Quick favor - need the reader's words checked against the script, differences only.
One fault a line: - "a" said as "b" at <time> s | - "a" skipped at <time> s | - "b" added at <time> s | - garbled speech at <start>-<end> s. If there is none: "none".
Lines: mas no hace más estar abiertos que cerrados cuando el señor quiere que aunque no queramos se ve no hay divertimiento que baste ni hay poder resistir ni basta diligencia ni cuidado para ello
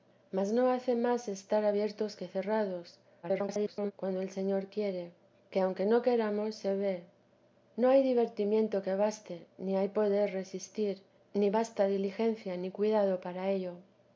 - garbled speech at 3.2-3.9 s